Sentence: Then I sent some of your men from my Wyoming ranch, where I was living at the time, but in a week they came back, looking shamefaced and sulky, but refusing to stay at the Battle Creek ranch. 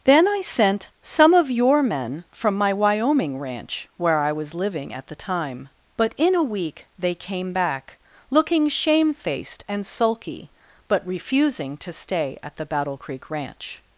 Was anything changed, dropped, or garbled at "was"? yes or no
no